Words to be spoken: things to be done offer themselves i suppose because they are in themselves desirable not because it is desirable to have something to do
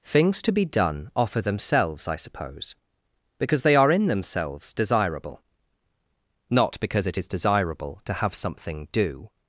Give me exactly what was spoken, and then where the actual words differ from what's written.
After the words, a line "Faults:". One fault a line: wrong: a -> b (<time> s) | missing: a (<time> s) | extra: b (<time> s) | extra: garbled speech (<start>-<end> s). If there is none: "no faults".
things to be done offer themselves i suppose because they are in themselves desirable not because it is desirable to have something do
Faults:
missing: to (8.9 s)